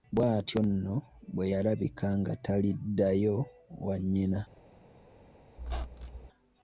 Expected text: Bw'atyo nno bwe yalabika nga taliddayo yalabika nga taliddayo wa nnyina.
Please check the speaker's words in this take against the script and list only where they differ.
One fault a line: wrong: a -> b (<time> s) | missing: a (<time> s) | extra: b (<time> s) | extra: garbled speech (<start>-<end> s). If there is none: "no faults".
missing: yalabika nga taliddayo (3.4 s)